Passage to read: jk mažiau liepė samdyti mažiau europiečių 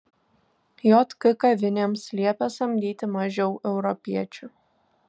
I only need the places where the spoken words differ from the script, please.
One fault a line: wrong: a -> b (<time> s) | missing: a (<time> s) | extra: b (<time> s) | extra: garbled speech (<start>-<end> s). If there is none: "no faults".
wrong: mažiau -> kavinėms (1.4 s)